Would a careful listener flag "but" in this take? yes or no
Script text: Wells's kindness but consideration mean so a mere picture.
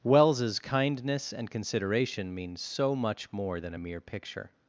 yes